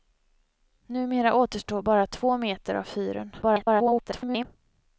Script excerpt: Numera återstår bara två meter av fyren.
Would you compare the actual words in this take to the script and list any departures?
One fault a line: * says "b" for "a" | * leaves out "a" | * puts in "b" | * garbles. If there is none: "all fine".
* garbles